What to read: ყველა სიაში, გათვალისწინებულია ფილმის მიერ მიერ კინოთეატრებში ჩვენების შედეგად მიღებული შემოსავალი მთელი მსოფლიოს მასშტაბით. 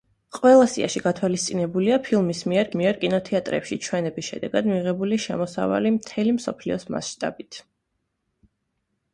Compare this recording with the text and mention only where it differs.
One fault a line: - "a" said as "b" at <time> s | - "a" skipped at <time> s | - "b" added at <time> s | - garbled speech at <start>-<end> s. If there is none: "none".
none